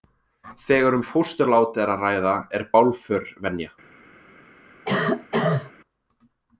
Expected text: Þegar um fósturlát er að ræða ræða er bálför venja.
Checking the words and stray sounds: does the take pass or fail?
fail